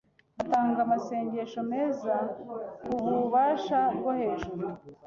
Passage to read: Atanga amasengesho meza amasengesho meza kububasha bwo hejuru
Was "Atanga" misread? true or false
false